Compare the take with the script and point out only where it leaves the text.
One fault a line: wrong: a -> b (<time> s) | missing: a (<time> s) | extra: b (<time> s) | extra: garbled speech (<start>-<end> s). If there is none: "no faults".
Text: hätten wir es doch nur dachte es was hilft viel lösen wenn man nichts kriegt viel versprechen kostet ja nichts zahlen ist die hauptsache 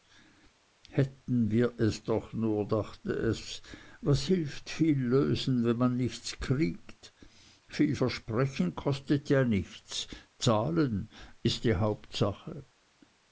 no faults